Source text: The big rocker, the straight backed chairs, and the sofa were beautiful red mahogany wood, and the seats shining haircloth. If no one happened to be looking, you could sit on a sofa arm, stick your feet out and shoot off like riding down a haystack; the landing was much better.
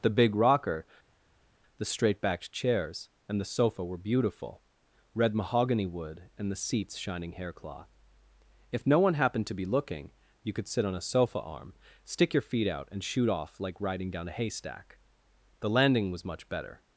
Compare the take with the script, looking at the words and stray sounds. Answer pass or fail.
pass